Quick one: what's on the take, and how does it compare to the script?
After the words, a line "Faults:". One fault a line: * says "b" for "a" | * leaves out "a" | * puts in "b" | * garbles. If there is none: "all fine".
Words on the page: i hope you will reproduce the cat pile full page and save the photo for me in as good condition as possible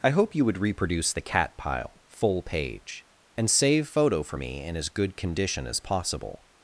i hope you would reproduce the cat pile full page and save photo for me in as good condition as possible
Faults:
* says "would" for "will"
* leaves out "the"